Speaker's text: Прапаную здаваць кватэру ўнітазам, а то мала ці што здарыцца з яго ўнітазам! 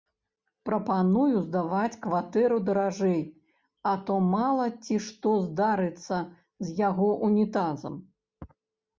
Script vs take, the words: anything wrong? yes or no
yes